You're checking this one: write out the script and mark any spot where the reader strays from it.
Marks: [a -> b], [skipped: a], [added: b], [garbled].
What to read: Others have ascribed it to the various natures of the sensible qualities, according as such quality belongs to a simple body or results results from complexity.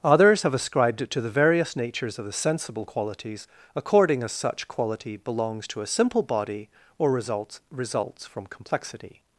Others have ascribed it to the various natures of the sensible qualities, according as such quality belongs to a simple body or results results from complexity.